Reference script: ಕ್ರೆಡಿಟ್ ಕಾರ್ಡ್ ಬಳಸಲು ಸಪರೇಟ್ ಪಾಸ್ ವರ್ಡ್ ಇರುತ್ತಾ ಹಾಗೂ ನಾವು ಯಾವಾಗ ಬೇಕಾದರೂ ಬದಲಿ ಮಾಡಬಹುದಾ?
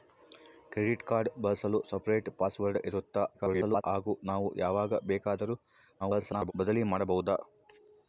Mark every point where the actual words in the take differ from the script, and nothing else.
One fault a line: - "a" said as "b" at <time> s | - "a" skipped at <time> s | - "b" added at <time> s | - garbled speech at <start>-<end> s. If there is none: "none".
- garbled speech at 3.3-3.8 s
- garbled speech at 6.0-6.5 s